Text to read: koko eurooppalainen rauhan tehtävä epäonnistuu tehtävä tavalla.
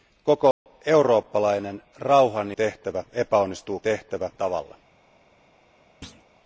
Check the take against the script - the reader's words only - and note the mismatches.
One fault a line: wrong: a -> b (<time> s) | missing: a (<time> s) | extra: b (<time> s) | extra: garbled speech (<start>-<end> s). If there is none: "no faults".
no faults